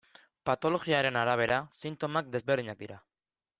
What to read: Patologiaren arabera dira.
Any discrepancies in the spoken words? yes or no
yes